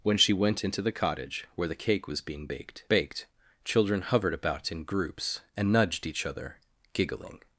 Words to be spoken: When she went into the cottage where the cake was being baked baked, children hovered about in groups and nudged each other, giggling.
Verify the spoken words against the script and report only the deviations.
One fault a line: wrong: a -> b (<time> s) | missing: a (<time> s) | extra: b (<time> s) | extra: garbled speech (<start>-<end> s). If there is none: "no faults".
no faults